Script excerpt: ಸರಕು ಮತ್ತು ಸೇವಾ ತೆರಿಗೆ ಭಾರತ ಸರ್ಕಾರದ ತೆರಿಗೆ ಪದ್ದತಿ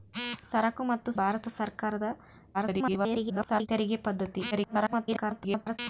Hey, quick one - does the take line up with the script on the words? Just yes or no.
no